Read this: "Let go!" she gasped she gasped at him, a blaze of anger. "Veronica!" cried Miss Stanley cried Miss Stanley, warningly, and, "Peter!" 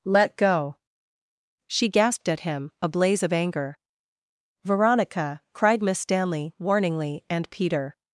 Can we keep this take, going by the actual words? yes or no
no